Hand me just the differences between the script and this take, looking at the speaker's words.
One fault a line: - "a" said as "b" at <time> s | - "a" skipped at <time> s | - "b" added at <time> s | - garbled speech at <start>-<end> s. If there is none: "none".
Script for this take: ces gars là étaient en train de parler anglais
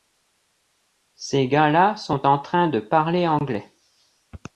- "étaient" said as "sont" at 1.9 s